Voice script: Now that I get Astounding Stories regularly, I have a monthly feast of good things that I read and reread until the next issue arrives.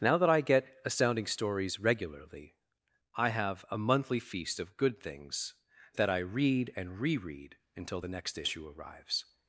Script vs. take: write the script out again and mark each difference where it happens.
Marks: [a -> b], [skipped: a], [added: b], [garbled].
Now that I get Astounding Stories regularly, I have a monthly feast of good things that I read and reread until the next issue arrives.